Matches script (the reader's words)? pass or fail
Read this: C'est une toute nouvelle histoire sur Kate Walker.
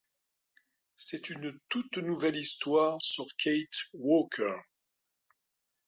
pass